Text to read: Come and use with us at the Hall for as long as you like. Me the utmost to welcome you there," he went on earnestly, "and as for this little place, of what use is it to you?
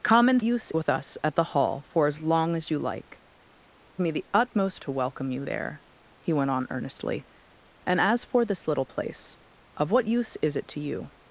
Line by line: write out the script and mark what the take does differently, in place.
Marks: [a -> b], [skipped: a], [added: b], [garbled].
Come and use with us at the Hall for as long as you like. Me the utmost to welcome you there," he went on earnestly, "and as for this little place, of what use is it to you?